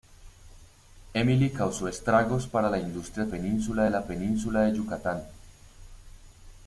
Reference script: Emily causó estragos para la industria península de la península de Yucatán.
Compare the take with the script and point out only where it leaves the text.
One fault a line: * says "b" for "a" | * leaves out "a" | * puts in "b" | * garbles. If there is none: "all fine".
all fine